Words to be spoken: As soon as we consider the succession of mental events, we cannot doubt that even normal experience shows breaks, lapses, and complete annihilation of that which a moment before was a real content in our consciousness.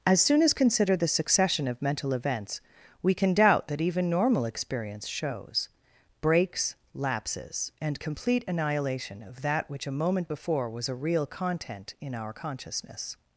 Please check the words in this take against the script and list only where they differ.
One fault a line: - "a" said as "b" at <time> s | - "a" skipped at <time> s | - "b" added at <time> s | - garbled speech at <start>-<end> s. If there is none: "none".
- "we" skipped at 0.5 s
- "cannot" said as "can" at 3.1 s